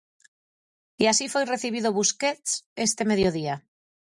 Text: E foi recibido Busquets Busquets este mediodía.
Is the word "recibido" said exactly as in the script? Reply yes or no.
yes